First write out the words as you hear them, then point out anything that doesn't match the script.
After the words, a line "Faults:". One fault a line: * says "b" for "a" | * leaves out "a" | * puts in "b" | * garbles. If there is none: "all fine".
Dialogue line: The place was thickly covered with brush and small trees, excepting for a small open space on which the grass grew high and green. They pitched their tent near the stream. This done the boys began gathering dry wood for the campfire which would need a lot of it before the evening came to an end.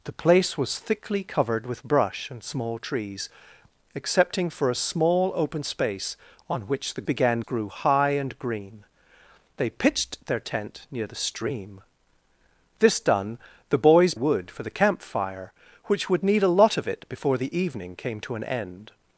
The place was thickly covered with brush and small trees, excepting for a small open space on which the began grew high and green. They pitched their tent near the stream. This done the boys wood for the campfire which would need a lot of it before the evening came to an end.
Faults:
* says "began" for "grass"
* leaves out "began gathering dry"